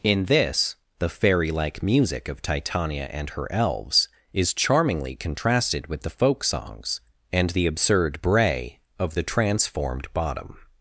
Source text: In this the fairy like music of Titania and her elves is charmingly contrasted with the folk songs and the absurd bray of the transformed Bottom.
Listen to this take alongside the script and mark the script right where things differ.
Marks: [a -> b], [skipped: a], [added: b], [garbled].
In this the fairy like music of Titania and her elves is charmingly contrasted with the folk songs and the absurd bray of the transformed Bottom.